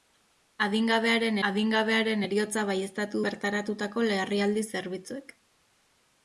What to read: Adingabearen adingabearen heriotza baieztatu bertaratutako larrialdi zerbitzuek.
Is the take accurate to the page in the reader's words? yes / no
yes